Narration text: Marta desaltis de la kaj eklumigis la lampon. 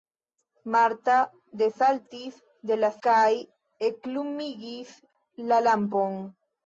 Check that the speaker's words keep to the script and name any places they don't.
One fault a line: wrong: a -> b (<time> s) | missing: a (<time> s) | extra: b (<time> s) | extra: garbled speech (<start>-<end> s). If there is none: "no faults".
no faults